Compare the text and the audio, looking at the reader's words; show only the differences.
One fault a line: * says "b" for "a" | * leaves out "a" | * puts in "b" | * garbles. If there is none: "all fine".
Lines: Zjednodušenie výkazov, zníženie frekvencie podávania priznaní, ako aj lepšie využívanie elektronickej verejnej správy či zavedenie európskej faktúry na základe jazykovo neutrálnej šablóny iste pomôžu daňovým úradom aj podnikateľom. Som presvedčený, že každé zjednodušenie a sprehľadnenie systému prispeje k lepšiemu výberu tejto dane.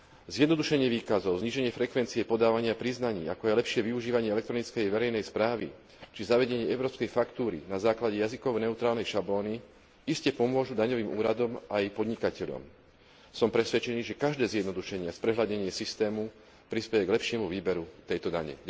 all fine